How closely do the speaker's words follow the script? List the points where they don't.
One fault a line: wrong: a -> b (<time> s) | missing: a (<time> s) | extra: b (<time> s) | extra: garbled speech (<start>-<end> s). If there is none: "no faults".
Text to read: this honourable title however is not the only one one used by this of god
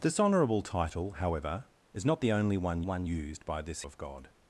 no faults